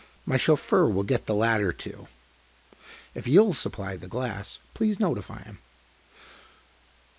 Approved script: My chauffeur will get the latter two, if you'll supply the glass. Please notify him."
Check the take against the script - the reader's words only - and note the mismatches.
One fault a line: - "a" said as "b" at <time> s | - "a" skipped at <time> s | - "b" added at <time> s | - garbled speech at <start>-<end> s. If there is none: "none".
none